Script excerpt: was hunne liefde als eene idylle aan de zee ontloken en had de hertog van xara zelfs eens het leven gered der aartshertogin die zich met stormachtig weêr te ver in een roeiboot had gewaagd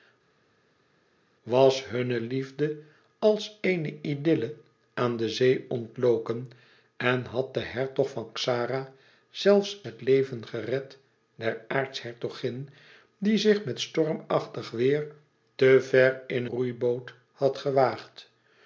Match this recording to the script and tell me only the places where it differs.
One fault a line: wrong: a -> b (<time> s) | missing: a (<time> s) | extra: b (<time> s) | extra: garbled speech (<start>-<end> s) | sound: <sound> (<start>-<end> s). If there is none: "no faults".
missing: eens (9.8 s)
missing: een (16.4 s)